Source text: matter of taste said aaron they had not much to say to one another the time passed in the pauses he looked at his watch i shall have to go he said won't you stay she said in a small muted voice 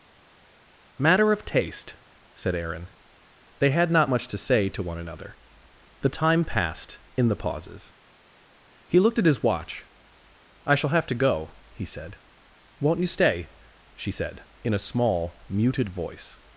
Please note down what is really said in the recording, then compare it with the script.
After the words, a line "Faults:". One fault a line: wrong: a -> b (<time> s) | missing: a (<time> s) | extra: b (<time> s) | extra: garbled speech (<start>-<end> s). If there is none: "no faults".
matter of taste said aaron they had not much to say to one another the time passed in the pauses he looked at his watch i shall have to go he said won't you stay she said in a small muted voice
Faults:
no faults